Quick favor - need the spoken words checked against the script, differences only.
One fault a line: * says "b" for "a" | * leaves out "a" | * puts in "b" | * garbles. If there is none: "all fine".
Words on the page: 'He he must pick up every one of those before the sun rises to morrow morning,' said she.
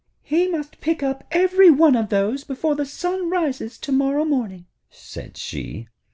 * leaves out "he"